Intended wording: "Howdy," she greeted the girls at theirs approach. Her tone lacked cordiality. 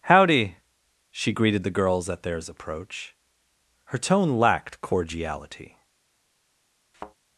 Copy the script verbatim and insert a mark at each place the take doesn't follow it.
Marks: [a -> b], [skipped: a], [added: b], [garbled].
"Howdy," she greeted the girls at theirs approach. Her tone lacked cordiality.